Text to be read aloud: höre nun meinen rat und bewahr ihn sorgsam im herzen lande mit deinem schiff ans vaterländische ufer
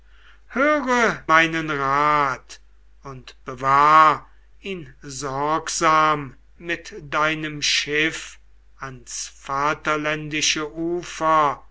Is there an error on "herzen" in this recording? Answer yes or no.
yes